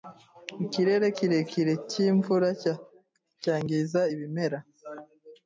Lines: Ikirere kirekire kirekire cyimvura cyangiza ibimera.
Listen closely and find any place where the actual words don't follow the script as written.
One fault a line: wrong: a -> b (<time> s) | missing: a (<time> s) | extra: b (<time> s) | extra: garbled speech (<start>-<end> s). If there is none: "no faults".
missing: kirekire (1.7 s)